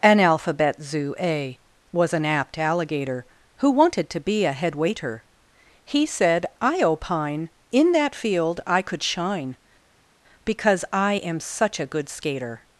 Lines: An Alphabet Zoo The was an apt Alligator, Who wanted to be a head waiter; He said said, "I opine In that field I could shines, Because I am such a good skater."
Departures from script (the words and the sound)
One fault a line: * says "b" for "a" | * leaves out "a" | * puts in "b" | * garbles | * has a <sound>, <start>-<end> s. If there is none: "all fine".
* says "A" for "The"
* leaves out "said"
* says "shine" for "shines"